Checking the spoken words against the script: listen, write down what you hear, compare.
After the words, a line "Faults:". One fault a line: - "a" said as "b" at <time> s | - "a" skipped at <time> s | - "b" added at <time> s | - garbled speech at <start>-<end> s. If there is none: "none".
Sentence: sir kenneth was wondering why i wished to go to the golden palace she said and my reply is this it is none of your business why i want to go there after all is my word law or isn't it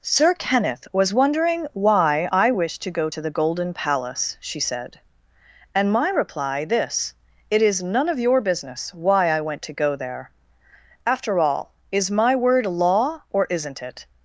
sir kenneth was wondering why i wished to go to the golden palace she said and my reply this it is none of your business why i went to go there after all is my word law or isn't it
Faults:
- "is" skipped at 6.7 s
- "want" said as "went" at 9.4 s